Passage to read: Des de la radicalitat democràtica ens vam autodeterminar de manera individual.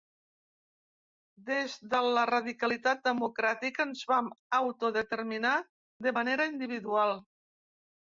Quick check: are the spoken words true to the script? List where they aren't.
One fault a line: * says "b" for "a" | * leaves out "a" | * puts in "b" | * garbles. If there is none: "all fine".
all fine